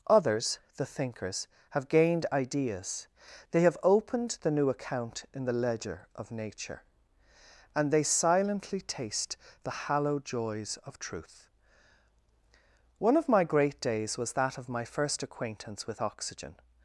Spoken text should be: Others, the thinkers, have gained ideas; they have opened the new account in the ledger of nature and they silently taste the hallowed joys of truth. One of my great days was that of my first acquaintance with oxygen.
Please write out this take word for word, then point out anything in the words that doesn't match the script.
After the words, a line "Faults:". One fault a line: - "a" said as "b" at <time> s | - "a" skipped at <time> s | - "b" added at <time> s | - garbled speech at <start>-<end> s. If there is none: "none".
Others, the thinkers, have gained ideas; they have opened the new account in the ledger of nature and they silently taste the hallowed joys of truth. One of my great days was that of my first acquaintance with oxygen.
Faults:
none